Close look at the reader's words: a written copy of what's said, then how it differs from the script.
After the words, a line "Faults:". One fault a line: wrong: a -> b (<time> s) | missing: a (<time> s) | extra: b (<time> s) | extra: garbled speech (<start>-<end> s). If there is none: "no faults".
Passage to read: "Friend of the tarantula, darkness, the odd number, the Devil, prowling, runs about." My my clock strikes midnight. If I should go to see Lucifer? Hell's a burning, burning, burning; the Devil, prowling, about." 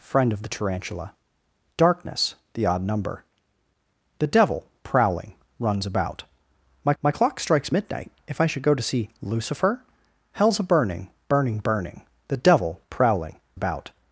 "Friend of the tarantula, darkness, the odd number, the Devil, prowling, runs about." My my clock strikes midnight. If I should go to see Lucifer? Hell's a burning, burning, burning; the Devil, prowling, about."
Faults:
no faults